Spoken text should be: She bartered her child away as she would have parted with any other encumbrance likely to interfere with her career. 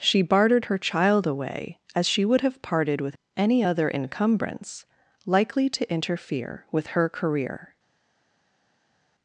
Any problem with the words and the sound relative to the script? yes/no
no